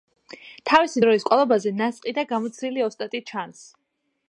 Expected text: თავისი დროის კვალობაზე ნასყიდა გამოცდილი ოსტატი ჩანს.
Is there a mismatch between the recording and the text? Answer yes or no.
no